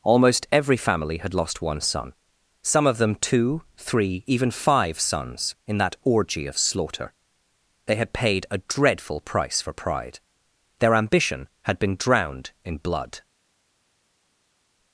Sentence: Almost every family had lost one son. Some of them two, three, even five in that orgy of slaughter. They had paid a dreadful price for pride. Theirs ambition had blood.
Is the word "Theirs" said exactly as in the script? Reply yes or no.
no